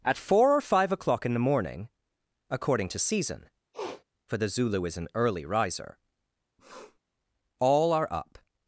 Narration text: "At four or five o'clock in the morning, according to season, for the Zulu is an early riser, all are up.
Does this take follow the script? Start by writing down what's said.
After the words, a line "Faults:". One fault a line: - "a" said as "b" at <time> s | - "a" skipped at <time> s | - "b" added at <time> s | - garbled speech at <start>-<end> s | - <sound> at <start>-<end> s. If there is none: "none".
"At four or five o'clock in the morning, according to season, for the Zulu is an early riser, all are up.
Faults:
- sniff at 3.7-4.0 s
- sniff at 6.6-7.0 s